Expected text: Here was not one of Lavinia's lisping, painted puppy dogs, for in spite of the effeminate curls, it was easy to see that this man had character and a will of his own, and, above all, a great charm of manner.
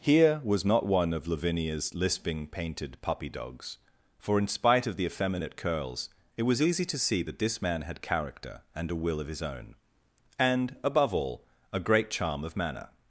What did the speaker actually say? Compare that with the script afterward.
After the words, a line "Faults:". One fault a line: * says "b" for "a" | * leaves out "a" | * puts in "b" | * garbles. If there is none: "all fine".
Here was not one of Lavinia's lisping, painted puppy dogs, for in spite of the effeminate curls, it was easy to see that this man had character and a will of his own, and, above all, a great charm of manner.
Faults:
all fine